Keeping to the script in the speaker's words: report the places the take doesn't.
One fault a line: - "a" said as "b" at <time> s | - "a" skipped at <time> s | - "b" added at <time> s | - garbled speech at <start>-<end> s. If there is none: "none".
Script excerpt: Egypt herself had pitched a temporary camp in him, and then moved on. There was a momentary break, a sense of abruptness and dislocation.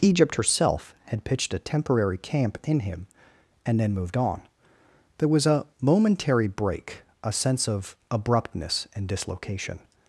none